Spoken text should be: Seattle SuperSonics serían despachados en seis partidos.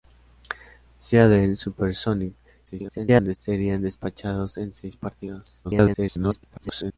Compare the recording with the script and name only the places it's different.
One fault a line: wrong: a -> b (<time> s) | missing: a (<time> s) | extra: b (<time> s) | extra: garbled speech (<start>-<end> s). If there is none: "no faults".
extra: garbled speech (2.7-3.4 s)
extra: garbled speech (5.6-7.0 s)